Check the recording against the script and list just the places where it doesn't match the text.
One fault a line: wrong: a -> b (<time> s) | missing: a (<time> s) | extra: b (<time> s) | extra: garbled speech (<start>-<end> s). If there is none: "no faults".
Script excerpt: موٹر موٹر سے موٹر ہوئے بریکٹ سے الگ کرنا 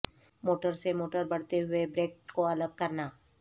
missing: موٹر (0.7 s)
extra: بڑھتے (1.3 s)
wrong: سے -> کو (2.3 s)